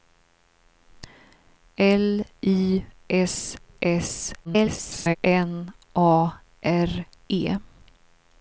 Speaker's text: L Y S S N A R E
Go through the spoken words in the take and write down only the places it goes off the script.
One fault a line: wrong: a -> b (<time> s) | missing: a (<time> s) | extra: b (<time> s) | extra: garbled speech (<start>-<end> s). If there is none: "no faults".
extra: garbled speech (4.4-5.2 s)